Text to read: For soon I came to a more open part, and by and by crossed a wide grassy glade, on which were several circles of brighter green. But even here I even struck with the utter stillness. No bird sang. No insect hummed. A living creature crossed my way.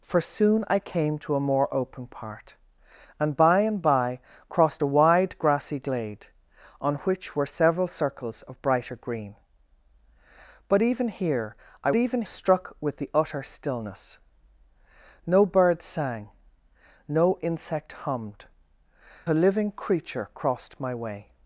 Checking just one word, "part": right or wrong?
right